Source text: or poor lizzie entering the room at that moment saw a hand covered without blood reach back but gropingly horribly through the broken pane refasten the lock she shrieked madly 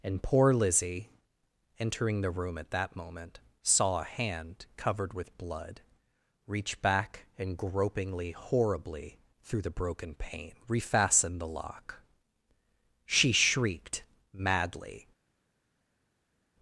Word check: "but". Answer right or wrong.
wrong